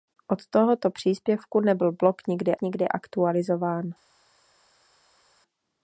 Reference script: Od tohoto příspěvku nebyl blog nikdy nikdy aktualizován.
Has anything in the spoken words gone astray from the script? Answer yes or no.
no